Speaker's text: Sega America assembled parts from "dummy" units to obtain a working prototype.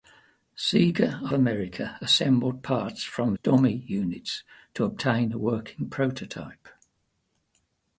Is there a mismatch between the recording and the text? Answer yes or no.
no